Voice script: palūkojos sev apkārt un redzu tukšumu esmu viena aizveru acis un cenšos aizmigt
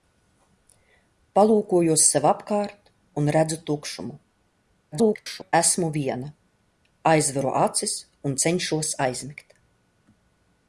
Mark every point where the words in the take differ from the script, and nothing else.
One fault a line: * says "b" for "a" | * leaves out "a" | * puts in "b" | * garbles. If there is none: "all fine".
* garbles